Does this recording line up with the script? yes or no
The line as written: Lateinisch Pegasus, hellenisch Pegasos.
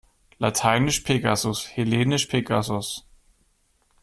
yes